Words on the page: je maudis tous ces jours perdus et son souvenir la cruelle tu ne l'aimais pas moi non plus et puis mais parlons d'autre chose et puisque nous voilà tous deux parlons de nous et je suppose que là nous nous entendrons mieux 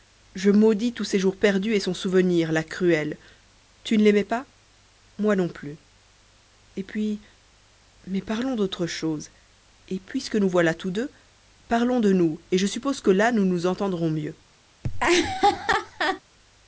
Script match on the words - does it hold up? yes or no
yes